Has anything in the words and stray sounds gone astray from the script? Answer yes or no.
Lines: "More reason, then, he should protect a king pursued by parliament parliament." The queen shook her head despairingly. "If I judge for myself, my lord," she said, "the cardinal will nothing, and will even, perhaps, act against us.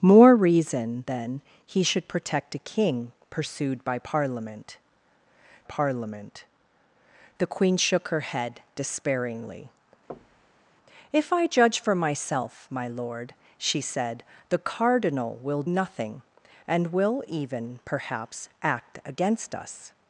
yes